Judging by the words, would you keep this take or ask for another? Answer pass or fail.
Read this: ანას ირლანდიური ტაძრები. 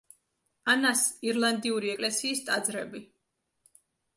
fail